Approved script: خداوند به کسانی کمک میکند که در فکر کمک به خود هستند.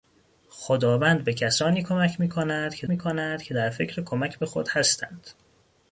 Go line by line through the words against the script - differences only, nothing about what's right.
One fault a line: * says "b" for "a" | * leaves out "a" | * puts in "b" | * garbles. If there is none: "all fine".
* puts in "میکند که"